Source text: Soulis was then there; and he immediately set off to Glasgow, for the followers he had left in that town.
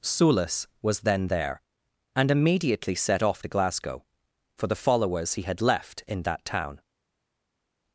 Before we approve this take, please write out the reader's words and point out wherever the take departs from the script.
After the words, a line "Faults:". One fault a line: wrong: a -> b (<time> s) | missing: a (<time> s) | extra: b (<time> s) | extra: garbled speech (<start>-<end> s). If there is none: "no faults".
Soulis was then there; and immediately set off to Glasgow, for the followers he had left in that town.
Faults:
missing: he (2.3 s)